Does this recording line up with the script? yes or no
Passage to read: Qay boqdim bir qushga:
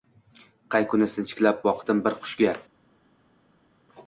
no